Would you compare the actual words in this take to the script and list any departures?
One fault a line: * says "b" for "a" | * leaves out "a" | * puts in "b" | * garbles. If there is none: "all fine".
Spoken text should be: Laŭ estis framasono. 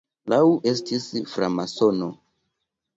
all fine